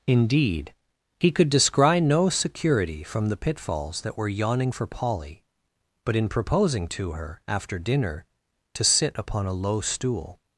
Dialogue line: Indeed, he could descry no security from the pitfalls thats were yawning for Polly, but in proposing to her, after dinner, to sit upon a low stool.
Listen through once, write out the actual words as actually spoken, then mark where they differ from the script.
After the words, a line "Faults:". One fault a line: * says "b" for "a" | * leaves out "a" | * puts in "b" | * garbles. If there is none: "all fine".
Indeed, he could descry no security from the pitfalls that were yawning for Polly, but in proposing to her, after dinner, to sit upon a low stool.
Faults:
* says "that" for "thats"